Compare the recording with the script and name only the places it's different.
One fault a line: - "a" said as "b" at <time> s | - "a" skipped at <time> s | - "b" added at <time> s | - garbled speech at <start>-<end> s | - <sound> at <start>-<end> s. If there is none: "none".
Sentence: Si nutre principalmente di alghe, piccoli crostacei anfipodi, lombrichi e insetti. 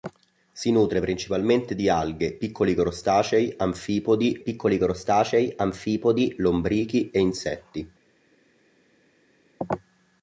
- "piccoli crostacei anfipodi" added at 4.4 s